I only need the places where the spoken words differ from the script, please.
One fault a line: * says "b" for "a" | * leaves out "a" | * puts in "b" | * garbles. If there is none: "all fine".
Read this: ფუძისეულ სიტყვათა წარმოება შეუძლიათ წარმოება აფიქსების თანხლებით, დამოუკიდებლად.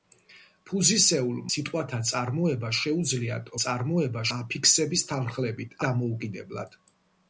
all fine